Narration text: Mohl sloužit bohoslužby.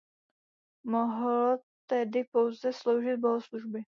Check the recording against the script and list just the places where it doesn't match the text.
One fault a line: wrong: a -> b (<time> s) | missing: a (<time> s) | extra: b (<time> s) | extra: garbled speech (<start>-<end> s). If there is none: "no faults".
extra: tedy pouze (1.9 s)